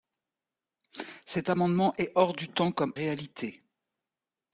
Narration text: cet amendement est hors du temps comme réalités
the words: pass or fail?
pass